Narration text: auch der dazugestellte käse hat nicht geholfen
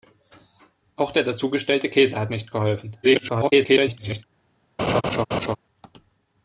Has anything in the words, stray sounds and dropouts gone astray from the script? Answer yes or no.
yes